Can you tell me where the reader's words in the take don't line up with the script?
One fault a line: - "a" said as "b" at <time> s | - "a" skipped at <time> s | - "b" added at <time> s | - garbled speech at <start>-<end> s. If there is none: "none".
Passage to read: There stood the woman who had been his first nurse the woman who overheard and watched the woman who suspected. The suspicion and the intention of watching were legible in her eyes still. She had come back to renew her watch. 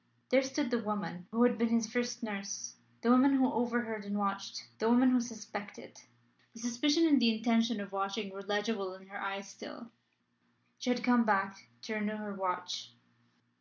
none